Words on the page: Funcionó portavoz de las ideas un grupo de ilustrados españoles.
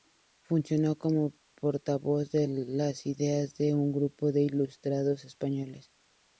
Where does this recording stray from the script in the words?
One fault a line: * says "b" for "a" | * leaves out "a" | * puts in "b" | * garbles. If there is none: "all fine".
* puts in "como"
* puts in "de"